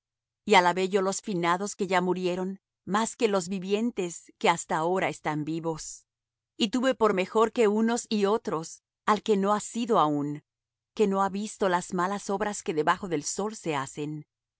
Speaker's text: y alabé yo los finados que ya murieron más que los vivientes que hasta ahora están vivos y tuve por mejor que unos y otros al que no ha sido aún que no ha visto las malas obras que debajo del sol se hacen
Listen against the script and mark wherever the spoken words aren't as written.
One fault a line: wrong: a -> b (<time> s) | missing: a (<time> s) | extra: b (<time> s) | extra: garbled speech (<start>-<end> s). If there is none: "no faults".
no faults